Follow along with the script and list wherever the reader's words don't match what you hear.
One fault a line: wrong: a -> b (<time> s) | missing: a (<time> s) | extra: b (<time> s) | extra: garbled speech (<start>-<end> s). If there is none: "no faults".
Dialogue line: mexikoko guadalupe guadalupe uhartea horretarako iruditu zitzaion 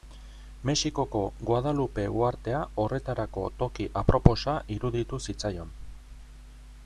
missing: guadalupe (2.0 s)
extra: toki aproposa (3.6 s)